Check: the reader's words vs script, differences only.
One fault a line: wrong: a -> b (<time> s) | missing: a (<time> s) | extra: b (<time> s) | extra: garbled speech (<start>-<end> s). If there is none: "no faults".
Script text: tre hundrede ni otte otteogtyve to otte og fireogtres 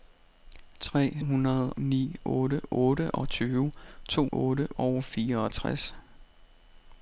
no faults